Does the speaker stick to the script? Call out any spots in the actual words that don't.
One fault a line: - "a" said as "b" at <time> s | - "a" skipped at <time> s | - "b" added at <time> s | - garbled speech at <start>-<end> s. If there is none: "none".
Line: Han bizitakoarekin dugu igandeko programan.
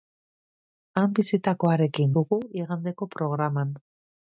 none